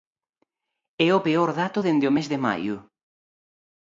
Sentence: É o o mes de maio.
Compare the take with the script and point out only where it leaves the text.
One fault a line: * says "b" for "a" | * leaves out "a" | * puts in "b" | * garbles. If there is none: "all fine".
* puts in "peor dato dende"